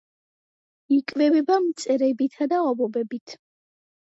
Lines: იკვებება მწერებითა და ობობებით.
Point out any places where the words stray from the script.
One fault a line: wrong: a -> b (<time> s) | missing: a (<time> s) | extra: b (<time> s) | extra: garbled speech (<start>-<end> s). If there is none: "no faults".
no faults